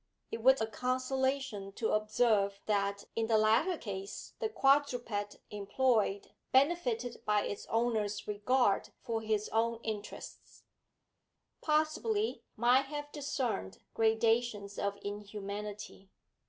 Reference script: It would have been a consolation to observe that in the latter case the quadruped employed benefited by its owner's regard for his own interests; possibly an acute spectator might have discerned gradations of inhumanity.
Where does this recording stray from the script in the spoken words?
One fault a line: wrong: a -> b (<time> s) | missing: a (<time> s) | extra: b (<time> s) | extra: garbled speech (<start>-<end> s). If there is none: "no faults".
missing: have been (0.6 s)
missing: an acute spectator (12.4 s)